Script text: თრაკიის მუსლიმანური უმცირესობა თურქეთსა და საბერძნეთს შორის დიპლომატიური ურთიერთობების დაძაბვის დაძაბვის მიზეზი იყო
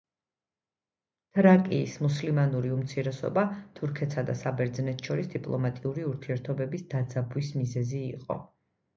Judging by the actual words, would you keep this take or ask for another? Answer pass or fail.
fail